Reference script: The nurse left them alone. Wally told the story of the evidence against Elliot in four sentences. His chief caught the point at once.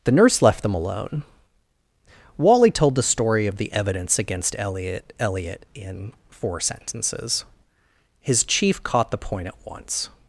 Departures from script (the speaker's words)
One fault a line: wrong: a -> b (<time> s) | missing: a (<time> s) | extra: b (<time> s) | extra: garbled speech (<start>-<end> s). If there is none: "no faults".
extra: Elliot (5.2 s)